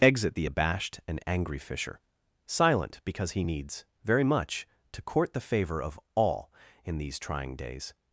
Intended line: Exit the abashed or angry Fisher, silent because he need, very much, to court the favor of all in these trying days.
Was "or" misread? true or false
true